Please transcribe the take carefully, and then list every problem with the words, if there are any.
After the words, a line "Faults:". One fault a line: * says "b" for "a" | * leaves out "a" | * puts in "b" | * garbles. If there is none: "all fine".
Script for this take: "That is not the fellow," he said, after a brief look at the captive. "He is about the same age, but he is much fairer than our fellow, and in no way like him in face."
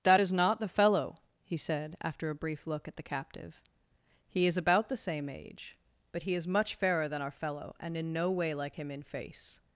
"That is not the fellow," he said, after a brief look at the captive. "He is about the same age, but he is much fairer than our fellow, and in no way like him in face."
Faults:
all fine